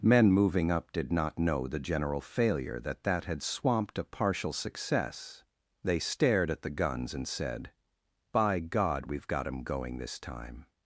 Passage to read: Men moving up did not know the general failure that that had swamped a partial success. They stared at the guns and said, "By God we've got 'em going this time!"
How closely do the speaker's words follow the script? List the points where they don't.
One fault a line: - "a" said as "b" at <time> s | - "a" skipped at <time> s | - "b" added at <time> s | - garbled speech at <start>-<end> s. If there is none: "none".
none